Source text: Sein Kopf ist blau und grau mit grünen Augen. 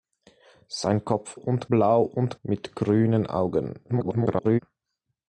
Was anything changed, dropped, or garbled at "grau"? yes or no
yes